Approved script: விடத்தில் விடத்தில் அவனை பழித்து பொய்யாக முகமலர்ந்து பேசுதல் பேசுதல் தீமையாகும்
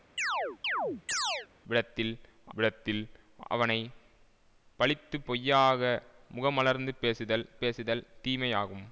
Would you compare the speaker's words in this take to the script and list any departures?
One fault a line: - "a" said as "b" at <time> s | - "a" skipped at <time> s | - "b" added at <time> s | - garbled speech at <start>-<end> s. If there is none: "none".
none